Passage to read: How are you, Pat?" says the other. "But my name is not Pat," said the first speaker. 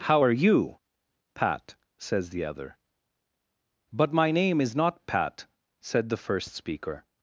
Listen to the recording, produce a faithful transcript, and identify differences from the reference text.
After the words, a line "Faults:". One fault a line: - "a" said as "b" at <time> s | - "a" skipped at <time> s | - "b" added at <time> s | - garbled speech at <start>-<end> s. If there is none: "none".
How are you, Pat?" says the other. "But my name is not Pat," said the first speaker.
Faults:
none